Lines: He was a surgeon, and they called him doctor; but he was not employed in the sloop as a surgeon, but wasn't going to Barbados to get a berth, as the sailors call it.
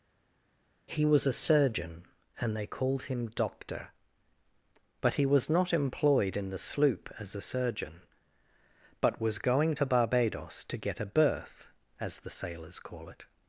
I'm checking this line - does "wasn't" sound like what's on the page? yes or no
no